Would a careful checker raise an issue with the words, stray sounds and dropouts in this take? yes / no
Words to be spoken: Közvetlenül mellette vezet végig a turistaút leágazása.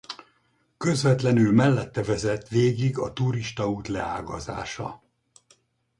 no